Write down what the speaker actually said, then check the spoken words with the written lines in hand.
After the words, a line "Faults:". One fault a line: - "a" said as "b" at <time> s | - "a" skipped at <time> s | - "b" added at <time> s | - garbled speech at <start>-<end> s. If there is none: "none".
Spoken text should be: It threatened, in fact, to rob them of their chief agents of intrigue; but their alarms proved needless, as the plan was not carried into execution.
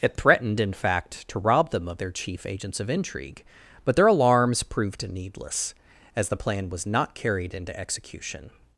It threatened, in fact, to rob them of their chief agents of intrigue; but their alarms proved needless, as the plan was not carried into execution.
Faults:
none